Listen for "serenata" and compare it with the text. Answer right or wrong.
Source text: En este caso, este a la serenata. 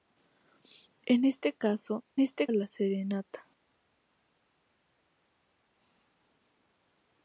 right